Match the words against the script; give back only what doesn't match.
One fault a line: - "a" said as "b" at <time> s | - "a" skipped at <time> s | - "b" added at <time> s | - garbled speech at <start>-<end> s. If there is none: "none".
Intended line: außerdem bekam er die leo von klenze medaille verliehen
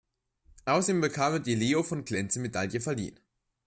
none